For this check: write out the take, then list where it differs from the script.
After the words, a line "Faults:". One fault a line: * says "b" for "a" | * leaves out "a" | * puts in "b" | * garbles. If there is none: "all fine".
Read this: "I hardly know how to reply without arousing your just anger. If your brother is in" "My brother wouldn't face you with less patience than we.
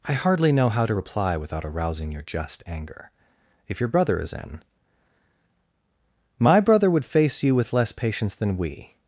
"I hardly know how to reply without arousing your just anger. If your brother is in" "My brother would face you with less patience than we.
Faults:
* says "would" for "wouldn't"